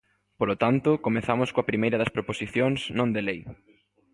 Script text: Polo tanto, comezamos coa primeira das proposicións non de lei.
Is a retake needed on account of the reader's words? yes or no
no